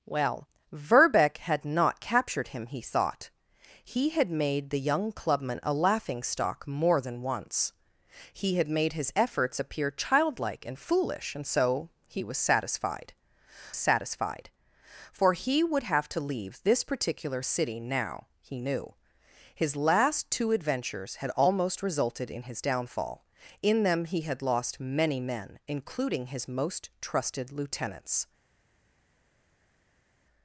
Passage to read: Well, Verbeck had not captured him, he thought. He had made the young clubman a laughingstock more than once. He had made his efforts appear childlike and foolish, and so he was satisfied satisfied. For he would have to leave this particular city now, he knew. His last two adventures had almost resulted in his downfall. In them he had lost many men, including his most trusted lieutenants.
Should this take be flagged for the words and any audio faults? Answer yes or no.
no